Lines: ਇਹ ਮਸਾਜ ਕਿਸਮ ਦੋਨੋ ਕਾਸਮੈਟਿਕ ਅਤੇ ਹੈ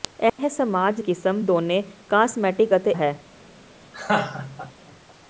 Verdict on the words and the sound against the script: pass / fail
fail